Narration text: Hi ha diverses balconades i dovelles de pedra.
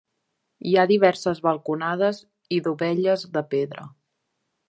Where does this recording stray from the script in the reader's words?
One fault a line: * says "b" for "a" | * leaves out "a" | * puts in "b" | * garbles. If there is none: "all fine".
all fine